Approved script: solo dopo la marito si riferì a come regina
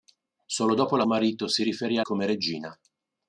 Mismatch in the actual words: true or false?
false